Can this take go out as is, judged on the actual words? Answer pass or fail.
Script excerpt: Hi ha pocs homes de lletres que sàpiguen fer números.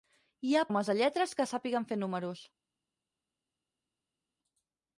fail